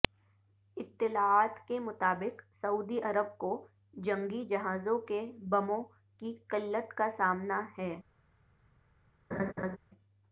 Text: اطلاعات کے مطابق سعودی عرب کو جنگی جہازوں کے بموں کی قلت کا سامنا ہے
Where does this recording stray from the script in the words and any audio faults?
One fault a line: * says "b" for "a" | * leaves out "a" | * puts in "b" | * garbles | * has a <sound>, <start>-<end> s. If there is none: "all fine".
* has a laugh, 9.3-9.8 s